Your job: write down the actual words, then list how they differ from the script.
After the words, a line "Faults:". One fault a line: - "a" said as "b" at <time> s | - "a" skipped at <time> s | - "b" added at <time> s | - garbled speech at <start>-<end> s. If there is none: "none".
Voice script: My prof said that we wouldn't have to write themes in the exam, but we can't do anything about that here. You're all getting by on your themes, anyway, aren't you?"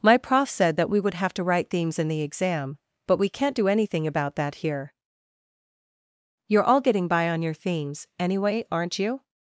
My prof said that we would have to write themes in the exam, but we can't do anything about that here. You're all getting by on your themes, anyway, aren't you?"
Faults:
- "wouldn't" said as "would" at 1.0 s